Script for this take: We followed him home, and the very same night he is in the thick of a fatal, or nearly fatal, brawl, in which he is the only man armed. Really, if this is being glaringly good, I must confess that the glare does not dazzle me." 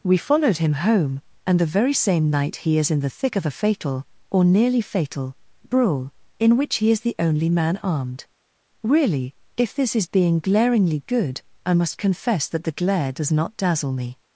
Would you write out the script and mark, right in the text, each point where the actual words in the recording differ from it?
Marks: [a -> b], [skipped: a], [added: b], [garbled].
We followed him home, and the very same night he is in the thick of a fatal, or nearly fatal, brawl, in which he is the only man armed. Really, if this is being glaringly good, I must confess that the glare does not dazzle me."